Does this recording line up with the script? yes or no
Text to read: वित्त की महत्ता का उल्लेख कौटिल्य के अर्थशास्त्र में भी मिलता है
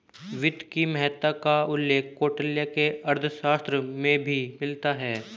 yes